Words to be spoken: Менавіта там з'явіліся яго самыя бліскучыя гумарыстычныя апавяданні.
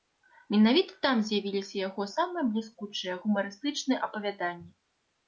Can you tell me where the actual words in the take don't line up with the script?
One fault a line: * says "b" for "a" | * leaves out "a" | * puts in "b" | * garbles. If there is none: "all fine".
all fine